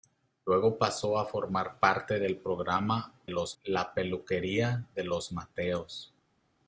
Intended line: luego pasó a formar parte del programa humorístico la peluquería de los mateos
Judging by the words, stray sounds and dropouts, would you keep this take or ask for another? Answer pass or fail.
fail